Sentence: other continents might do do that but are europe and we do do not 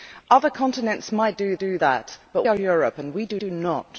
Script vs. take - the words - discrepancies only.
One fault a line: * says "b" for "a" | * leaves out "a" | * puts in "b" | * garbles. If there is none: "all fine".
all fine